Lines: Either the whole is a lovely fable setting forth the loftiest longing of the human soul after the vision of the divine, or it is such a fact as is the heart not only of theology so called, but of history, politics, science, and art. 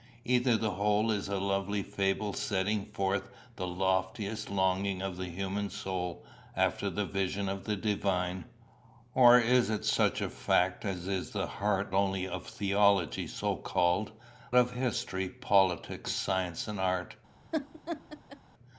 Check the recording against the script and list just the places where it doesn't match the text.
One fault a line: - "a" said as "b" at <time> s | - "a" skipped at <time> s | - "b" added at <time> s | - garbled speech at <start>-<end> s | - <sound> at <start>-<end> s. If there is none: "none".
- "not" skipped at 11.9 s
- "but" skipped at 14.1 s
- laugh at 17.5-18.4 s